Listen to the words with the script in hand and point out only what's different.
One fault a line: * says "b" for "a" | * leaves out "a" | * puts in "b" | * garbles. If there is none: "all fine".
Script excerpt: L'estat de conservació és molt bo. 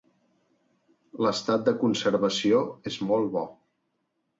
all fine